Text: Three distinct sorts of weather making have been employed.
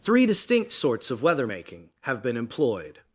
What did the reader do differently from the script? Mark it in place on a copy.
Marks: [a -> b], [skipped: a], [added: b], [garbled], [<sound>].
Three distinct sorts of weather making have been employed.